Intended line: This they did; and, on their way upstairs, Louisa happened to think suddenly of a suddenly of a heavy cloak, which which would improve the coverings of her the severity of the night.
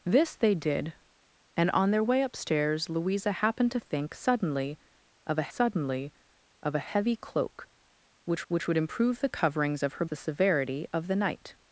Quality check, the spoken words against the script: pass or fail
pass